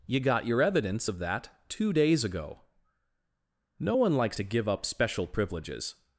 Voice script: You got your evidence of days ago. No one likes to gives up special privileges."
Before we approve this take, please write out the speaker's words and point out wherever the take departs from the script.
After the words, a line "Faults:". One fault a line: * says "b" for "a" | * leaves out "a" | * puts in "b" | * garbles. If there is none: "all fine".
You got your evidence of that two days ago. No one likes to give up special privileges."
Faults:
* puts in "that two"
* says "give" for "gives"